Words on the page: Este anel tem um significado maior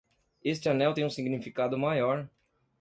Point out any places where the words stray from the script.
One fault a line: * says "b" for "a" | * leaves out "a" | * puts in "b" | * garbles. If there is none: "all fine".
all fine